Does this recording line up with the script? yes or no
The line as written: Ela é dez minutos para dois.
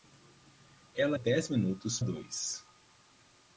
no